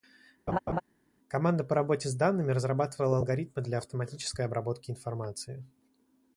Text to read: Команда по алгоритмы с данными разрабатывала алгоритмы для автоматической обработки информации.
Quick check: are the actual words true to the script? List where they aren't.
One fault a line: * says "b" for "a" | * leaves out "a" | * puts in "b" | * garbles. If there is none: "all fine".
* says "работе" for "алгоритмы"